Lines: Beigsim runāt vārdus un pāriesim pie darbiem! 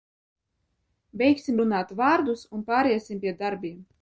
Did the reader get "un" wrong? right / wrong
right